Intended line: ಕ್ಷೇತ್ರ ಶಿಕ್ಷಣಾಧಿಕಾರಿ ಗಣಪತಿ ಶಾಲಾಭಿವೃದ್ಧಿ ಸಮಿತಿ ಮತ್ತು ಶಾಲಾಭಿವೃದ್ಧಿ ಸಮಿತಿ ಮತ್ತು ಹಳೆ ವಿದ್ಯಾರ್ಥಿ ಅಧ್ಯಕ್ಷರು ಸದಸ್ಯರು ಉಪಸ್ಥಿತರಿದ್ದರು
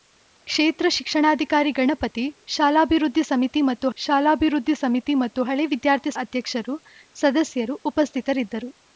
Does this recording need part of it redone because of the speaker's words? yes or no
no